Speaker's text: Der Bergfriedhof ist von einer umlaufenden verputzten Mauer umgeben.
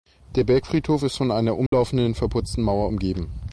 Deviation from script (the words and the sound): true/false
true